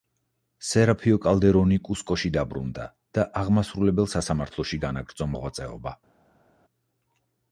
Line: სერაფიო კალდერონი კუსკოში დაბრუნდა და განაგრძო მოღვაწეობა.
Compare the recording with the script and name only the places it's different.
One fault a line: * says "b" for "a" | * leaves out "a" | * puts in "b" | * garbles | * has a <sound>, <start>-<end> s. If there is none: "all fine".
* puts in "აღმასრულებელ სასამართლოში"